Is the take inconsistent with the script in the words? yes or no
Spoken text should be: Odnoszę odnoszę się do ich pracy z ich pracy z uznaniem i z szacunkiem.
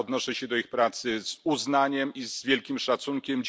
yes